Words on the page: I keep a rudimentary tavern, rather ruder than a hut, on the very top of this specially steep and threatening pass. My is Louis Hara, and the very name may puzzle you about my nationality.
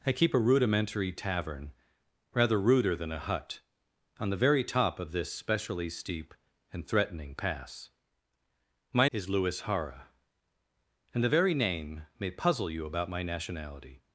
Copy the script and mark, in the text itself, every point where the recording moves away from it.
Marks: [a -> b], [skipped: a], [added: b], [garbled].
I keep a rudimentary tavern, rather ruder than a hut, on the very top of this specially steep and threatening pass. My is Louis Hara, and the very name may puzzle you about my nationality.